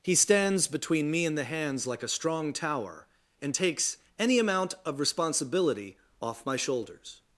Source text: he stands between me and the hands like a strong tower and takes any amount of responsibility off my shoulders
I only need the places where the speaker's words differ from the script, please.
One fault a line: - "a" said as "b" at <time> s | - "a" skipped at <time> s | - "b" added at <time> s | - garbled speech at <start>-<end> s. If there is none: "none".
none